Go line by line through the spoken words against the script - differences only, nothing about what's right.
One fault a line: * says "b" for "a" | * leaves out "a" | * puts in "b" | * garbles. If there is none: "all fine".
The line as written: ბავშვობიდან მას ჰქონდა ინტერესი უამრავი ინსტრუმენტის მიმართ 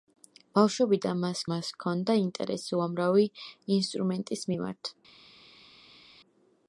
* puts in "მას"